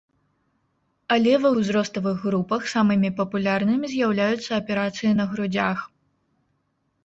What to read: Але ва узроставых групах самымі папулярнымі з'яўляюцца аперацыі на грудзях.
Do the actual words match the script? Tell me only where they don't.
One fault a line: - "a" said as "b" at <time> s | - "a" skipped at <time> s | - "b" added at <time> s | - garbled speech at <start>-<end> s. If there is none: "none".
none